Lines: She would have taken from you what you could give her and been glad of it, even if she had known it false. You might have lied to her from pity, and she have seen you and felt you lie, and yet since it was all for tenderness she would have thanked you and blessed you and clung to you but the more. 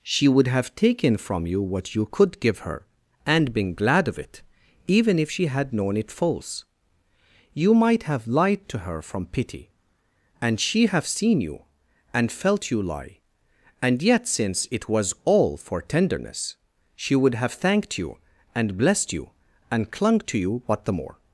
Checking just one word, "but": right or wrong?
wrong